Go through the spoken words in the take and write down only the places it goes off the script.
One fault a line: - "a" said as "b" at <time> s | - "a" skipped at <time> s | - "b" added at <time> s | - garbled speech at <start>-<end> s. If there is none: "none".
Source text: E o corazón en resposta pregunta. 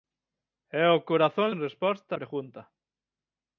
none